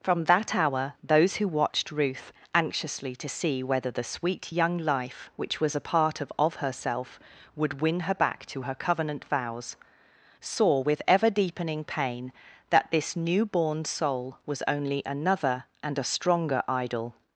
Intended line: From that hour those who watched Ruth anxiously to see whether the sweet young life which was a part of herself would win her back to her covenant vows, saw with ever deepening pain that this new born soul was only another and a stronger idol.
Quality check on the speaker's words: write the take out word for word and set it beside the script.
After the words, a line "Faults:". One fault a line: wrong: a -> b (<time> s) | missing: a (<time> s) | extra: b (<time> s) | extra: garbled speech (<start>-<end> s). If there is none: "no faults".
From that hour those who watched Ruth anxiously to see whether the sweet young life which was a part of of herself would win her back to her covenant vows, saw with ever deepening pain that this new born soul was only another and a stronger idol.
Faults:
extra: of (6.4 s)